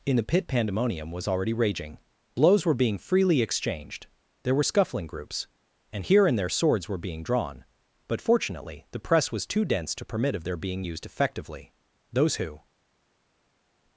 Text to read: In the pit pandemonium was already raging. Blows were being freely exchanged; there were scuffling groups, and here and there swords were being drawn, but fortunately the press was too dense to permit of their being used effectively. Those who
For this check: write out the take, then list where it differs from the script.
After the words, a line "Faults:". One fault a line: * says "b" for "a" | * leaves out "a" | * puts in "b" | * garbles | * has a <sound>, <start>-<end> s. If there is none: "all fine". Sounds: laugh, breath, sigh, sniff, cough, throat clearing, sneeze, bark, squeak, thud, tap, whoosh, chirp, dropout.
In the pit pandemonium was already raging. Blows were being freely exchanged; there were scuffling groups, and here and there swords were being drawn, but fortunately the press was too dense to permit of their being used effectively. Those who
Faults:
all fine